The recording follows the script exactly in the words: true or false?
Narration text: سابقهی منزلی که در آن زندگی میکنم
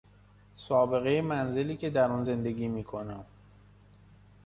true